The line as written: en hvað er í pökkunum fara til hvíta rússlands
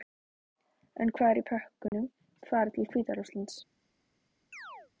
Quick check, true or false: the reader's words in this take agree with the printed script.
true